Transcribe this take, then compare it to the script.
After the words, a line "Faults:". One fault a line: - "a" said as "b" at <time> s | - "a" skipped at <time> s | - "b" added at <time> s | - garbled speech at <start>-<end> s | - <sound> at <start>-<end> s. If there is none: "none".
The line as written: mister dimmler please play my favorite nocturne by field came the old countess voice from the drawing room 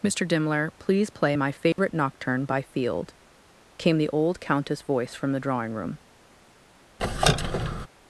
mister dimmler please play my favorite nocturne by field came the old countess voice from the drawing room
Faults:
- dropout at 1.7-1.8 s
- squeak at 7.0-7.9 s